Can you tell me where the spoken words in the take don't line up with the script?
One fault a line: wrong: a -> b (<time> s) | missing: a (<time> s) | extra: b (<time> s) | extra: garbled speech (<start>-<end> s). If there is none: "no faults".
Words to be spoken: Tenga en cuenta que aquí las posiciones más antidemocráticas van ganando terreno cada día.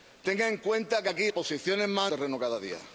missing: las (1.3 s)
missing: antidemocráticas van ganando (2.1 s)